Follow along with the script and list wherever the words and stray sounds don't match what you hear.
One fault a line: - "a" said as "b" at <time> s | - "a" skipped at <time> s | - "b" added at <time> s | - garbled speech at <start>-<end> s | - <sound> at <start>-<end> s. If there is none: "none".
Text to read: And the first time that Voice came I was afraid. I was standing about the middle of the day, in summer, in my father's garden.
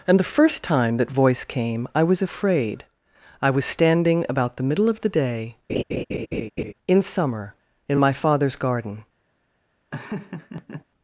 - laugh at 5.7-6.7 s
- laugh at 9.9-10.8 s